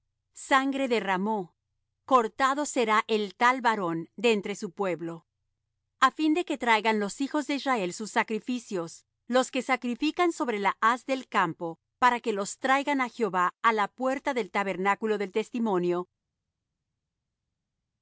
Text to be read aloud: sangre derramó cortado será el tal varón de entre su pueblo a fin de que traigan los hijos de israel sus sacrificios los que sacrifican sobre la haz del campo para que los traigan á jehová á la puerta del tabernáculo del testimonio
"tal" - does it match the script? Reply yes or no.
yes